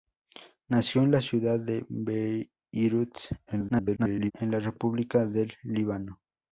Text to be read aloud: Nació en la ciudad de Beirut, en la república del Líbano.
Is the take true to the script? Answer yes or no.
no